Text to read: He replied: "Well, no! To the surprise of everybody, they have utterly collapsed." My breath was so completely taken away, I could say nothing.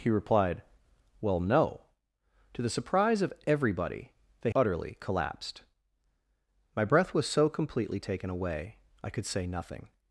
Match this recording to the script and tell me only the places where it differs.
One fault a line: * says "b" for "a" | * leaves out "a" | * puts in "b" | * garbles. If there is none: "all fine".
* leaves out "have"